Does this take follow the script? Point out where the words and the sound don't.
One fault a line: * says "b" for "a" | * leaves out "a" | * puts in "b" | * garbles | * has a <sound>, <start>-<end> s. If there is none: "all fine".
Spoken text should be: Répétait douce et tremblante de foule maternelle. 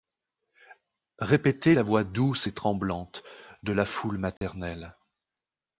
* puts in "la voix"
* puts in "la"
* has a dropout, 4.4-4.4 s